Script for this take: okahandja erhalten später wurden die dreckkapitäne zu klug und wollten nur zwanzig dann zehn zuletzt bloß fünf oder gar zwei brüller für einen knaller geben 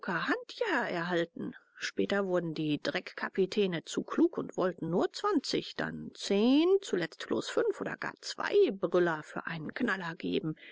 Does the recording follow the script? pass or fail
pass